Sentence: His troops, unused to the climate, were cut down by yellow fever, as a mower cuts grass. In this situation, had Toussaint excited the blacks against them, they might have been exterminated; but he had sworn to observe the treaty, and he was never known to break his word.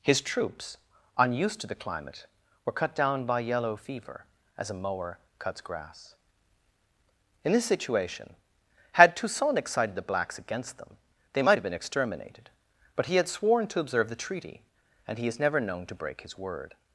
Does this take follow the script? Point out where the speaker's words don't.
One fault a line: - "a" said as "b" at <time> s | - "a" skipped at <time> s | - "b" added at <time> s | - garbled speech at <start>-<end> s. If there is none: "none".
- "was" said as "is" at 15.3 s